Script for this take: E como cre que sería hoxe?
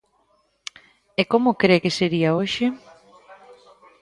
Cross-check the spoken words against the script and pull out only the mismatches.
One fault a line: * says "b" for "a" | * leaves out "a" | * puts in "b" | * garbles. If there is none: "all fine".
all fine